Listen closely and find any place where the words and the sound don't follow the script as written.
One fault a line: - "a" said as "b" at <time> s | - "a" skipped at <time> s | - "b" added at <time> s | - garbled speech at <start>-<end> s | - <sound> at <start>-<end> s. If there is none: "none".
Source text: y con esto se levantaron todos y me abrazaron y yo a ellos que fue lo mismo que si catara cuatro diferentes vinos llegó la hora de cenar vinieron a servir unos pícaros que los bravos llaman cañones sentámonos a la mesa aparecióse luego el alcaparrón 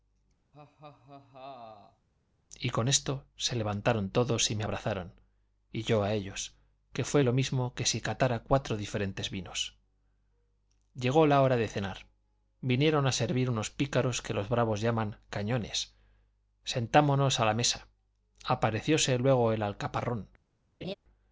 - laugh at 0.5-2.1 s
- laugh at 20.8-20.9 s